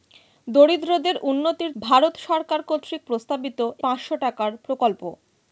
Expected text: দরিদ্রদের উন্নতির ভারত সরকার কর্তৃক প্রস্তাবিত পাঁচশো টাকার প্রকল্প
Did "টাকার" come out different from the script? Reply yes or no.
no